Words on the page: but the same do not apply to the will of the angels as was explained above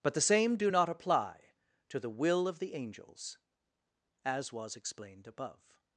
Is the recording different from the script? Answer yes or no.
no